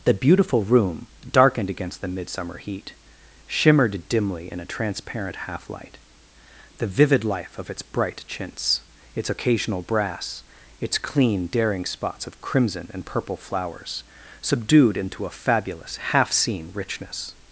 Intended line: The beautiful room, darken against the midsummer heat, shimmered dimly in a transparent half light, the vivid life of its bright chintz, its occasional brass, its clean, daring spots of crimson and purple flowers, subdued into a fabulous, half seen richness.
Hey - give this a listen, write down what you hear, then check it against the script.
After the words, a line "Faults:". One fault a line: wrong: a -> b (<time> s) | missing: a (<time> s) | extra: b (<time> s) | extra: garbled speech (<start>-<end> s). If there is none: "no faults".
The beautiful room, darkened against the midsummer heat, shimmered dimly in a transparent half light, the vivid life of its bright chintz, its occasional brass, its clean, daring spots of crimson and purple flowers, subdued into a fabulous, half seen richness.
Faults:
wrong: darken -> darkened (1.3 s)